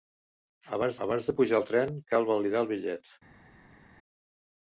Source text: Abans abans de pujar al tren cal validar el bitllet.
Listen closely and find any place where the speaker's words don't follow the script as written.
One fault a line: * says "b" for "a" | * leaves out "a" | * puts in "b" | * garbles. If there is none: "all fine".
all fine